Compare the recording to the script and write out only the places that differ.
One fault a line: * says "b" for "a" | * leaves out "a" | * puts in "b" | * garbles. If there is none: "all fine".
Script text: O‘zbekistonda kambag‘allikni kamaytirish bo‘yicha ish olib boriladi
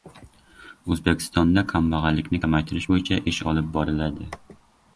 all fine